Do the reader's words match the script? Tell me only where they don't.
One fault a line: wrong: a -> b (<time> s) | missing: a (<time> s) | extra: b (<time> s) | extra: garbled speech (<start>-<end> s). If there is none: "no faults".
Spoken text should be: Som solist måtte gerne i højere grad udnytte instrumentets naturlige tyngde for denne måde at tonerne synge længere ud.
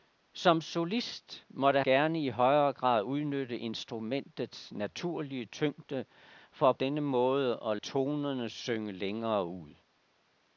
no faults